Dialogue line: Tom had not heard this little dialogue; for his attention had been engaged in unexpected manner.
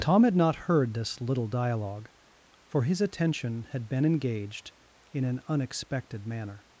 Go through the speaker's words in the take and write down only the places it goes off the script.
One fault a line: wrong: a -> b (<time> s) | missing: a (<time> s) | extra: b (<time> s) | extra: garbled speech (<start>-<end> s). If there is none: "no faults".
extra: an (5.2 s)